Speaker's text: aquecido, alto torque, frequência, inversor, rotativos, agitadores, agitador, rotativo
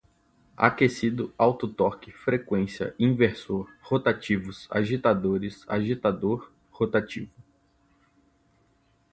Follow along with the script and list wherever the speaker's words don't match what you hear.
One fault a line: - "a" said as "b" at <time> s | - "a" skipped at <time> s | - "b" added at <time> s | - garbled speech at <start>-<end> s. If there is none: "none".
none